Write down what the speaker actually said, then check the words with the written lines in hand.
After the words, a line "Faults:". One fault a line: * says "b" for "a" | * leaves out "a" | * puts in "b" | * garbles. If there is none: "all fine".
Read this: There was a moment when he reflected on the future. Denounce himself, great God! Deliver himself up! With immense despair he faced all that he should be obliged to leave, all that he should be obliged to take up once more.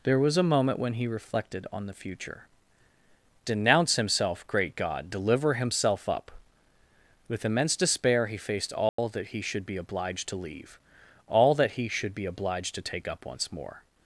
There was a moment when he reflected on the future. Denounce himself, great God! Deliver himself up! With immense despair he faced all that he should be obliged to leave, all that he should be obliged to take up once more.
Faults:
all fine